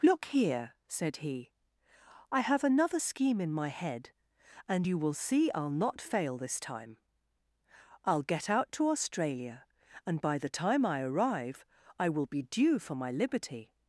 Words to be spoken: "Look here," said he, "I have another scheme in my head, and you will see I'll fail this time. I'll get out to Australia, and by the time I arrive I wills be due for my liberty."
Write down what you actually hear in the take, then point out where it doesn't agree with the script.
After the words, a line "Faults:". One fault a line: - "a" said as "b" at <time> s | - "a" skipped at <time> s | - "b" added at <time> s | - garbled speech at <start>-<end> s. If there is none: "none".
"Look here," said he, "I have another scheme in my head, and you will see I'll not fail this time. I'll get out to Australia, and by the time I arrive I will be due for my liberty."
Faults:
- "not" added at 5.7 s
- "wills" said as "will" at 12.1 s